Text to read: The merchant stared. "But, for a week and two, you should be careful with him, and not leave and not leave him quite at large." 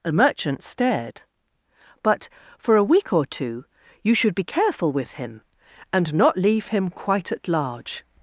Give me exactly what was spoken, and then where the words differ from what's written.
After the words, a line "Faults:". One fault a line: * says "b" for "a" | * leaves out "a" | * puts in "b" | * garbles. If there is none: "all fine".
The merchant stared. "But, for a week or two, you should be careful with him, and not leave him quite at large."
Faults:
* says "or" for "and"
* leaves out "and not leave"